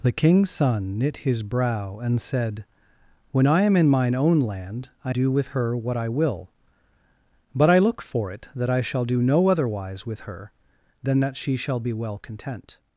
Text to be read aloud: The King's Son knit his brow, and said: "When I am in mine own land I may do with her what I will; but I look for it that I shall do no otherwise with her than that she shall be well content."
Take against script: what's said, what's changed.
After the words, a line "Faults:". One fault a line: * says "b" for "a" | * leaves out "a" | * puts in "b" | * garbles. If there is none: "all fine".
The King's Son knit his brow, and said: "When I am in mine own land I do with her what I will; but I look for it that I shall do no otherwise with her than that she shall be well content."
Faults:
* leaves out "may"